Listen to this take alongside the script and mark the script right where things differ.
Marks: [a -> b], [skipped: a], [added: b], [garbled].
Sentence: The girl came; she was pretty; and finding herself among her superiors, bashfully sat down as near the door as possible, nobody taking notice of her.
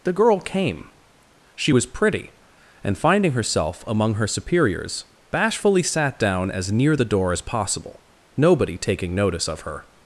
The girl came; she was pretty; and finding herself among her superiors, bashfully sat down as near the door as possible, nobody taking notice of her.